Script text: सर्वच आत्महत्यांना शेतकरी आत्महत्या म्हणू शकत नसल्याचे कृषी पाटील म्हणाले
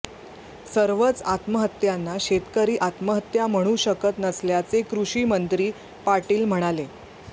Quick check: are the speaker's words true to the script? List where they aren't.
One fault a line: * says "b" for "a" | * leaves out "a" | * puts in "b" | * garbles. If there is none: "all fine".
* puts in "मंत्री"